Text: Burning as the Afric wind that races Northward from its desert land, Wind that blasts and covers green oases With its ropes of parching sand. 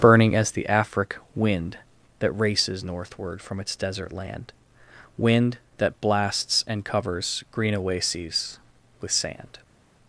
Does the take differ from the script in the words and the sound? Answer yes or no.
yes